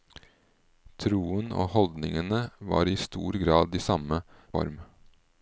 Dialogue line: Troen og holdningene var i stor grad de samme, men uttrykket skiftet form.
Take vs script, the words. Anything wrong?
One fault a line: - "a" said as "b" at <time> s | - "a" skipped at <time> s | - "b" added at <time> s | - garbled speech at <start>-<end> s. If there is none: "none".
- "men uttrykket skiftet" skipped at 4.2 s